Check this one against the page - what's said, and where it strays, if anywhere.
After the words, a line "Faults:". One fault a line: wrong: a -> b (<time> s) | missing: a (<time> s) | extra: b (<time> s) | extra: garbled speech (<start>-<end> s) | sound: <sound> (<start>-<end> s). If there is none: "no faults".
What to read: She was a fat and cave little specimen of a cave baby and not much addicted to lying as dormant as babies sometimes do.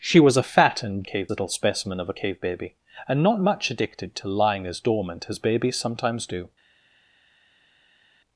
She was a fat and cave little specimen of a cave baby and not much addicted to lying as dormant as babies sometimes do.
Faults:
no faults